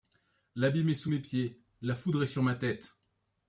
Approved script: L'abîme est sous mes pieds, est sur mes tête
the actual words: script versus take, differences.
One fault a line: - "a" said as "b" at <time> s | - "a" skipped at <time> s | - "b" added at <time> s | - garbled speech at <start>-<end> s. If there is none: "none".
- "la foudre" added at 1.8 s
- "mes" said as "ma" at 2.4 s